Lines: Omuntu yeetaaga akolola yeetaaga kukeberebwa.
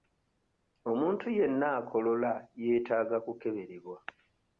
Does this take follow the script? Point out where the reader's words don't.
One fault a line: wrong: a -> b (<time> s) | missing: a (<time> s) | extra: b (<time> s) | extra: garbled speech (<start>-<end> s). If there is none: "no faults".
wrong: yeetaaga -> yenna (1.4 s)